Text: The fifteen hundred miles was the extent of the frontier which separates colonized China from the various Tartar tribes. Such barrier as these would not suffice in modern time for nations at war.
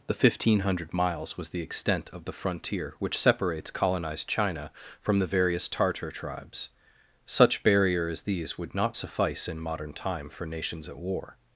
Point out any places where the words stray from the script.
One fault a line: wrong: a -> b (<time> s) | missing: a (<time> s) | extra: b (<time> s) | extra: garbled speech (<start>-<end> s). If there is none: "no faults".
no faults